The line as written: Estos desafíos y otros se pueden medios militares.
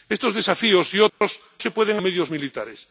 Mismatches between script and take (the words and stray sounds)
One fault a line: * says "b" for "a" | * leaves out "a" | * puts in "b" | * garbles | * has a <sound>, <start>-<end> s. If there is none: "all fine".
* has a dropout, 1.1-1.2 s